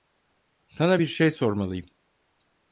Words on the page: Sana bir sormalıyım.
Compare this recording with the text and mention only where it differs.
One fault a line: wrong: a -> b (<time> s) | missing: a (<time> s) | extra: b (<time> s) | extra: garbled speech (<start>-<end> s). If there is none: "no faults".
extra: şey (1.1 s)